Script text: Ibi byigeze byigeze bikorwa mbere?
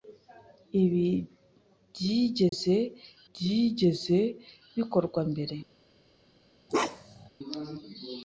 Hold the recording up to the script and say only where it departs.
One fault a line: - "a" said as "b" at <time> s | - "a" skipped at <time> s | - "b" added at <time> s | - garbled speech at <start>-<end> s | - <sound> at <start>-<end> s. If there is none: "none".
- dropout at 2.5-2.5 s
- bark at 6.7-7.3 s